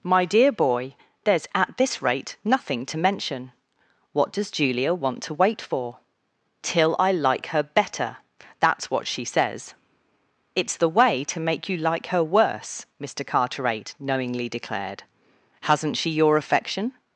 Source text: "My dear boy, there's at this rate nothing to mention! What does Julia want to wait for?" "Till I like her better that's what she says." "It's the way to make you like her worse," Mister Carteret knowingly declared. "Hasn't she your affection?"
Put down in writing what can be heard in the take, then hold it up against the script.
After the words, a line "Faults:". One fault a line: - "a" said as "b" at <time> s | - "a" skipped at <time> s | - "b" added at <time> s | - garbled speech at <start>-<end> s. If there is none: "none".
"My dear boy, there's at this rate nothing to mention! What does Julia want to wait for?" "Till I like her better that's what she says." "It's the way to make you like her worse," Mister Carteret knowingly declared. "Hasn't she your affection?"
Faults:
none